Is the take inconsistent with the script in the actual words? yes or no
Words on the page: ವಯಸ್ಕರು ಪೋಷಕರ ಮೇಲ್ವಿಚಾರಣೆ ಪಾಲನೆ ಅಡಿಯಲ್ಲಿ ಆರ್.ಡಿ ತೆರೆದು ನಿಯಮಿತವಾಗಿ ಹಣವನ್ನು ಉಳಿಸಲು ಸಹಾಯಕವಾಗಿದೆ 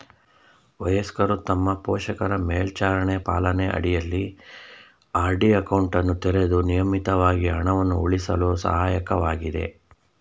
yes